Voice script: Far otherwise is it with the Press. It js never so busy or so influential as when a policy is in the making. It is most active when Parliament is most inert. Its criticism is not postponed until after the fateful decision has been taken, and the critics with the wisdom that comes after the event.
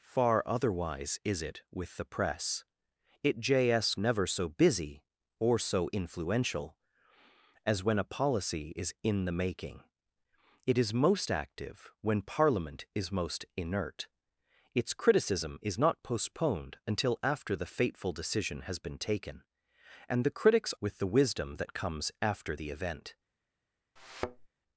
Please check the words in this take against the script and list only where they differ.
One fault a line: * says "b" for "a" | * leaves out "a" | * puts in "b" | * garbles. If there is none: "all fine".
all fine